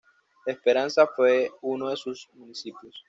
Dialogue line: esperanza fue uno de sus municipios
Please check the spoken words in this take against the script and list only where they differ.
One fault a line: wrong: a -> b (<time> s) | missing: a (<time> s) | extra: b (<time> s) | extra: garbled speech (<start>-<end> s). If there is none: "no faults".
no faults